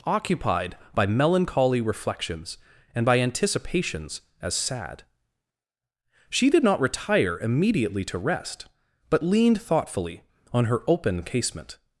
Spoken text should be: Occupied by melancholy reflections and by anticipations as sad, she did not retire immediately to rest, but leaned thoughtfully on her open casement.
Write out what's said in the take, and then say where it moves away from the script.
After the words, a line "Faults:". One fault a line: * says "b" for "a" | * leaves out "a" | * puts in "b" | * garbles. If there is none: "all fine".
Occupied by melancholy reflections and by anticipations as sad, she did not retire immediately to rest, but leaned thoughtfully on her open casement.
Faults:
all fine